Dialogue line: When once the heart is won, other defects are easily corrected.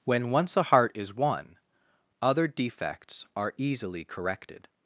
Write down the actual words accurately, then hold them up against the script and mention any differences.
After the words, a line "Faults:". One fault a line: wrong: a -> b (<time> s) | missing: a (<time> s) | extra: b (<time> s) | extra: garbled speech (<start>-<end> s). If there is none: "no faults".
When once a heart is won, other defects are easily corrected.
Faults:
wrong: the -> a (0.6 s)